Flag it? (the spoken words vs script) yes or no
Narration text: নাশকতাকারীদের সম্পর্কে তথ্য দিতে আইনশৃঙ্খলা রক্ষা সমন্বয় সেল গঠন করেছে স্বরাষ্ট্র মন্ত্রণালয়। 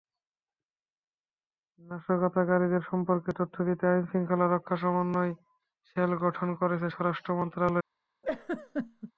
no